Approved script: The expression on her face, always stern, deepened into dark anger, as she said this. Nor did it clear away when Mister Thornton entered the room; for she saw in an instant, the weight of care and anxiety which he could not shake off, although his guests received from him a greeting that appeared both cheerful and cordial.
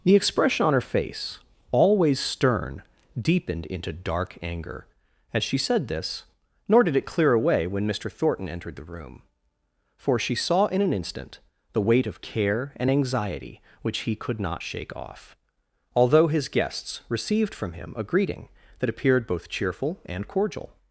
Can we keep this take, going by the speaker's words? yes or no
yes